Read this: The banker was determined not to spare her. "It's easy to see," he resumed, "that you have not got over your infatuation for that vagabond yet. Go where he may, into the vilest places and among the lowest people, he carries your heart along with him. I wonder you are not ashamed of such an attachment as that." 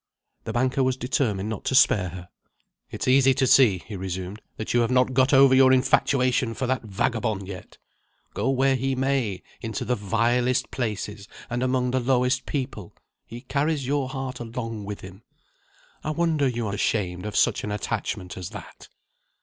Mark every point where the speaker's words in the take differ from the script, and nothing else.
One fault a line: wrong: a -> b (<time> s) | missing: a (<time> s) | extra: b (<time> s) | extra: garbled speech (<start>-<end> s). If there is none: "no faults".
missing: not (16.7 s)